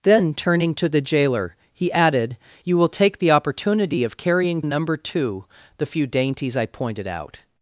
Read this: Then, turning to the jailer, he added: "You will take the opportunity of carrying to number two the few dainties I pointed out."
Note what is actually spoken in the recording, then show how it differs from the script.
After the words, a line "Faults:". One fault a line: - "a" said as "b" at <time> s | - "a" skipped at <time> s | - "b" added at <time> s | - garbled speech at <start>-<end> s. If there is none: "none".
Then, turning to the jailer, he added: "You will take the opportunity of carrying number two the few dainties I pointed out."
Faults:
- "to" skipped at 4.6 s